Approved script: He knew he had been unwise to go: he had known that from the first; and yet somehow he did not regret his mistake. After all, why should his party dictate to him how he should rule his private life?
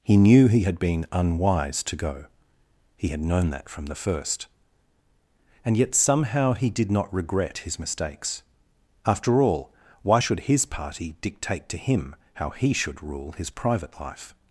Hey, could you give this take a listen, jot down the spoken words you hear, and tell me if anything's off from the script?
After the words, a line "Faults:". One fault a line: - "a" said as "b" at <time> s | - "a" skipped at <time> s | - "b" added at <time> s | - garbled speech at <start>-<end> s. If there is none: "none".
He knew he had been unwise to go: he had known that from the first; and yet somehow he did not regret his mistakes. After all, why should his party dictate to him how he should rule his private life?
Faults:
- "mistake" said as "mistakes" at 7.8 s